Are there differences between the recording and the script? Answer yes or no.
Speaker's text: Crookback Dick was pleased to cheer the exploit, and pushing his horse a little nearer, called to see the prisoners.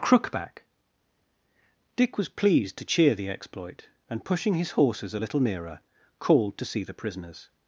yes